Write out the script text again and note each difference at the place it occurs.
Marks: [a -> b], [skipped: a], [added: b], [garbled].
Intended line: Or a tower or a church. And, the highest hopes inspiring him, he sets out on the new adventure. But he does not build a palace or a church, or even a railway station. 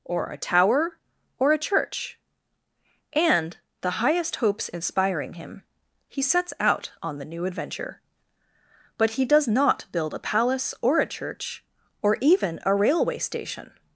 Or a tower or a church. And, the highest hopes inspiring him, he sets out on the new adventure. But he does not build a palace or a church, or even a railway station.